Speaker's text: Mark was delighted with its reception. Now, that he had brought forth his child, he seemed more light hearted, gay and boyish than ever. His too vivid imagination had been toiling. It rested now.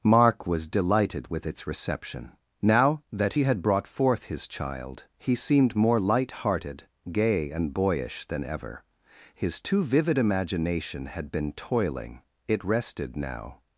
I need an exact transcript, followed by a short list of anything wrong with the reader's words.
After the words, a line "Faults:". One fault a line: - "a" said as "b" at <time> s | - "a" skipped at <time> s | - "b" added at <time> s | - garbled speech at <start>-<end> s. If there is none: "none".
Mark was delighted with its reception. Now, that he had brought forth his child, he seemed more light hearted, gay and boyish than ever. His too vivid imagination had been toiling. It rested now.
Faults:
none